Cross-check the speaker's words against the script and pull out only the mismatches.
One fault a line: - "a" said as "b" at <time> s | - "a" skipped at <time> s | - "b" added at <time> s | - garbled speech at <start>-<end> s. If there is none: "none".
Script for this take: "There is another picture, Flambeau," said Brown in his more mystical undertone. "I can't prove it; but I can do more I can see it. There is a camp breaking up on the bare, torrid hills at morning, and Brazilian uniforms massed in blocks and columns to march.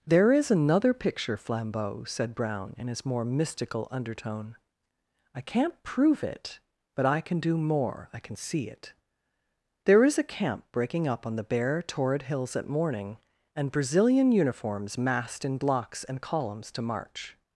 none